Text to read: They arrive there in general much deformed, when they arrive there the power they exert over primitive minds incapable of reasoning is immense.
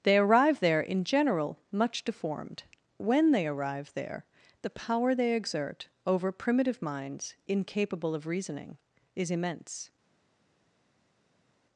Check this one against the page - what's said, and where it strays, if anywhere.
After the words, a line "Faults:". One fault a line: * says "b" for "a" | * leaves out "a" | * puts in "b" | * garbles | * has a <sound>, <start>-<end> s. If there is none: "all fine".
They arrive there in general much deformed, when they arrive there the power they exert over primitive minds incapable of reasoning is immense.
Faults:
all fine